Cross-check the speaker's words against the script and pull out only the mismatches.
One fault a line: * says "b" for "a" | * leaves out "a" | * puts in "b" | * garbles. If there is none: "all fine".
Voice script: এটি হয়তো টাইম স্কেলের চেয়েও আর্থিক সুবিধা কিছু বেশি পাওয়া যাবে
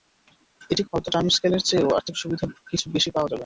all fine